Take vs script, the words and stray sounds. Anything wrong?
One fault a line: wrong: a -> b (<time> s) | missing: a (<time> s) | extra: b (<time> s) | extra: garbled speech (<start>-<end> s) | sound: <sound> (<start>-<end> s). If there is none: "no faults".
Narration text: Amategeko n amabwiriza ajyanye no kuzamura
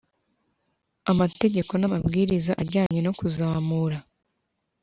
sound: dropout (2.9-2.9 s)